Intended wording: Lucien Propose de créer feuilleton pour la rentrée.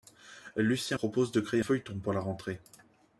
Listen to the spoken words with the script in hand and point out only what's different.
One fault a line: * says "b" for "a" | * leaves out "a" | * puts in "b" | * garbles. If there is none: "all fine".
all fine